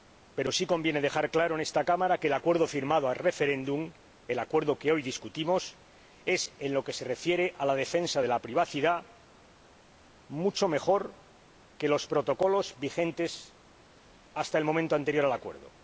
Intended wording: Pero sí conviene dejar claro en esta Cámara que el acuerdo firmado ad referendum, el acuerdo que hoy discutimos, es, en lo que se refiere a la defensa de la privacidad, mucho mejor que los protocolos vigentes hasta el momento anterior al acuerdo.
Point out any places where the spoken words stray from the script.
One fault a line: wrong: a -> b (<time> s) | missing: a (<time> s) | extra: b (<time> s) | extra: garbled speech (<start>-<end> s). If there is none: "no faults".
no faults